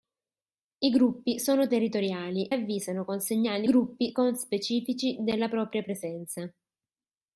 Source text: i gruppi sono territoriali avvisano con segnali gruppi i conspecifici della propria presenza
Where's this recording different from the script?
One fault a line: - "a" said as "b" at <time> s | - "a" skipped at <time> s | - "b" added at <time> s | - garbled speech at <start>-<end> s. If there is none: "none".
none